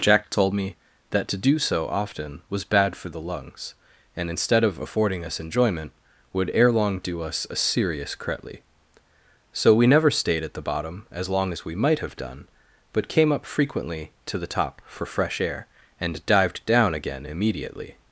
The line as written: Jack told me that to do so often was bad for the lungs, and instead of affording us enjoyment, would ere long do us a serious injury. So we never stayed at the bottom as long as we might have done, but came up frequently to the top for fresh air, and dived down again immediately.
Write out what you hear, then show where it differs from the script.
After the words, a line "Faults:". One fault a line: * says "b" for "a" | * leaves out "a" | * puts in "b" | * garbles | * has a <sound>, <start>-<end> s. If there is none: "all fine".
Jack told me that to do so often was bad for the lungs, and instead of affording us enjoyment, would ere long do us a serious cretly. So we never stayed at the bottom as long as we might have done, but came up frequently to the top for fresh air, and dived down again immediately.
Faults:
* says "cretly" for "injury"